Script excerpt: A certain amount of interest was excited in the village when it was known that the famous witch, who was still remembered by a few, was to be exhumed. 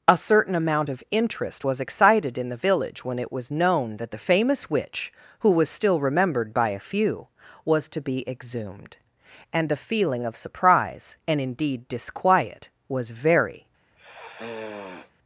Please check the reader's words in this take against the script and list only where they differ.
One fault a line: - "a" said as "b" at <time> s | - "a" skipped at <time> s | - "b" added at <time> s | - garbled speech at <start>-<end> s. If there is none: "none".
- "And the feeling of surprise and indeed disquiet was very" added at 9.5 s